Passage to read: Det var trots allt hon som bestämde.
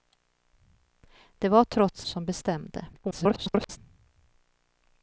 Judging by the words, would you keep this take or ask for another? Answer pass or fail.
fail